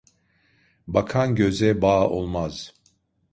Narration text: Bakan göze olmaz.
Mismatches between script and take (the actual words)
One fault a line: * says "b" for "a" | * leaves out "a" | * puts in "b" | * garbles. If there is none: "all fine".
* puts in "bağ"